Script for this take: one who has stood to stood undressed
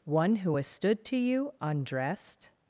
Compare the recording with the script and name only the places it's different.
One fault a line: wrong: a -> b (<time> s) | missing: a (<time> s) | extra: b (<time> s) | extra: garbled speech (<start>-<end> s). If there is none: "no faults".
wrong: stood -> you (1.2 s)